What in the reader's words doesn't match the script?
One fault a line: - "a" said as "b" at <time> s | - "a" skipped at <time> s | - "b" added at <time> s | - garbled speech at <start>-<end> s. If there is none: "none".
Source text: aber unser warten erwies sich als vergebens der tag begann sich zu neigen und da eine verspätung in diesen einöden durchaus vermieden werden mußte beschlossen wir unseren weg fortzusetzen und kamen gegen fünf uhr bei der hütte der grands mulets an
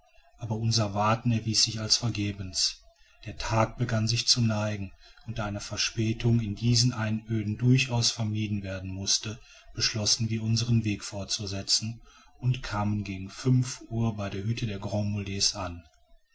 none